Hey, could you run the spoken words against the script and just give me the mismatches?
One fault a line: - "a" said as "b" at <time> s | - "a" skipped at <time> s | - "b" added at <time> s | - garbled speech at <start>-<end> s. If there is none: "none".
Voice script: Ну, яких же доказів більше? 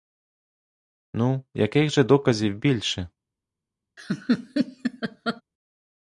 none